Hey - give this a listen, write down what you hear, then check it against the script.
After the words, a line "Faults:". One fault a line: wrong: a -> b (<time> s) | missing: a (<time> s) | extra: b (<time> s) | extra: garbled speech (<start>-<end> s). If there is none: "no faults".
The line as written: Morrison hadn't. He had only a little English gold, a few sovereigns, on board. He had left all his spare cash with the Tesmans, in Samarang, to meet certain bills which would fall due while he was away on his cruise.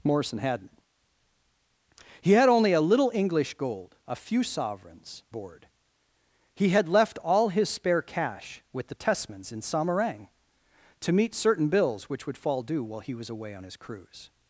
Morrison hadn't. He had only a little English gold, a few sovereigns, board. He had left all his spare cash with the Tesmans, in Samarang, to meet certain bills which would fall due while he was away on his cruise.
Faults:
missing: on (5.2 s)